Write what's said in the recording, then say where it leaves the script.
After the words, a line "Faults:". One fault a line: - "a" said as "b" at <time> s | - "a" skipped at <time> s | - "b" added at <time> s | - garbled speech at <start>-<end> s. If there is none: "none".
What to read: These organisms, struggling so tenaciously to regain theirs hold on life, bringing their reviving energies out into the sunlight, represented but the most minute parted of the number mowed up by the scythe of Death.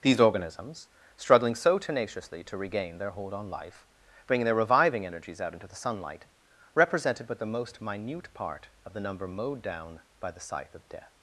These organisms, struggling so tenaciously to regain their hold on life, bringing their reviving energies out into the sunlight, represented but the most minute part of the number mowed down by the scythe of Death.
Faults:
- "theirs" said as "their" at 3.0 s
- "parted" said as "part" at 8.3 s
- "up" said as "down" at 9.6 s